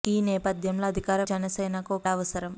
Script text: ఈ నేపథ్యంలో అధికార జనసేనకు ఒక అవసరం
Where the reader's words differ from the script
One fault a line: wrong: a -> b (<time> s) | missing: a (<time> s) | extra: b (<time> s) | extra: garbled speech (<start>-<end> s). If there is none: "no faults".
no faults